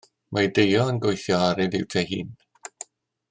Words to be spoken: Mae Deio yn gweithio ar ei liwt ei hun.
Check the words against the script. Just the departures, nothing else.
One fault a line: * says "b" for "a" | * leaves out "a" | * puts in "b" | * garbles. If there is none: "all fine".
all fine